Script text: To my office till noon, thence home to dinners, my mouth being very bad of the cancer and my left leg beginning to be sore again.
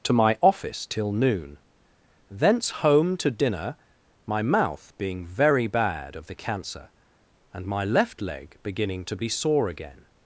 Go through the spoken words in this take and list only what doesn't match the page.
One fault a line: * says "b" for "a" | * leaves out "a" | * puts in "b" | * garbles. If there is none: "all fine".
* says "dinner" for "dinners"